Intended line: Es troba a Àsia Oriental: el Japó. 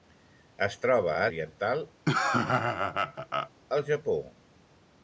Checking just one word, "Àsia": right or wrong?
wrong